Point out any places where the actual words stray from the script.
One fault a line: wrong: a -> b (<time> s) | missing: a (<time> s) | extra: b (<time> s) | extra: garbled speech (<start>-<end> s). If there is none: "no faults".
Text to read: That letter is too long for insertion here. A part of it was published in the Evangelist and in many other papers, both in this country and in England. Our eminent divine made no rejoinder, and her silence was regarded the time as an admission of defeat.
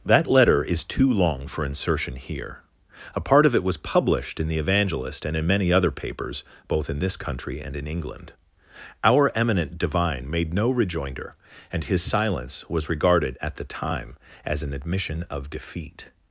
wrong: her -> his (11.8 s)
extra: at (13.4 s)